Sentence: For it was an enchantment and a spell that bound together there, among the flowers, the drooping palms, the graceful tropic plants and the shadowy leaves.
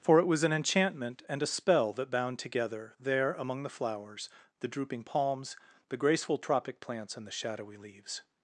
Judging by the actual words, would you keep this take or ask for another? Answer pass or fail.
pass